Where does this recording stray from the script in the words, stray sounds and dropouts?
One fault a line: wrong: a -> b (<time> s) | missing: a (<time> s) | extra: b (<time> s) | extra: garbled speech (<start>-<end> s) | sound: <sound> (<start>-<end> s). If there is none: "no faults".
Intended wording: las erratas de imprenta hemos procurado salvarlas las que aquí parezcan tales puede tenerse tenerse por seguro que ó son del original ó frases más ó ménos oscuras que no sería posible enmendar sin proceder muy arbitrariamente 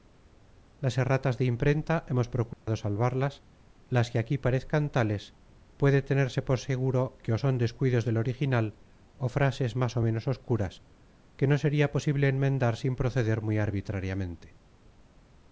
sound: dropout (2.5-2.7 s)
missing: tenerse (6.4 s)
extra: descuidos (7.6 s)